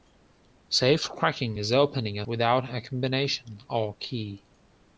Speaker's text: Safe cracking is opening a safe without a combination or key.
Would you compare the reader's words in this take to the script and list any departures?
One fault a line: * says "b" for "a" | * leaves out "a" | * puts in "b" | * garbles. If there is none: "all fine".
* leaves out "safe"